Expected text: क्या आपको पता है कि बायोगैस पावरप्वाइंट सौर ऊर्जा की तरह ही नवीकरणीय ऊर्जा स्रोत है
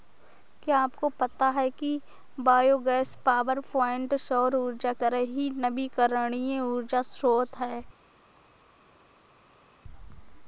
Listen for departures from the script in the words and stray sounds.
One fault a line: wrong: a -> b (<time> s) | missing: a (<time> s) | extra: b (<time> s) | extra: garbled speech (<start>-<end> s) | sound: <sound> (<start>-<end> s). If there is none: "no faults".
missing: की (4.9 s)